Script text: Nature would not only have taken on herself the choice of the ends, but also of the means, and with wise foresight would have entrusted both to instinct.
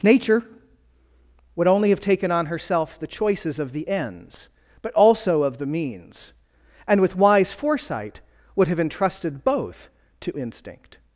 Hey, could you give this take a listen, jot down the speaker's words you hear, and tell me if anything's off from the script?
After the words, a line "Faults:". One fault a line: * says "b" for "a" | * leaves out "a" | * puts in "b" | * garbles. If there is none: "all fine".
Nature would only have taken on herself the choices of the ends, but also of the means, and with wise foresight would have entrusted both to instinct.
Faults:
* leaves out "not"
* says "choices" for "choice"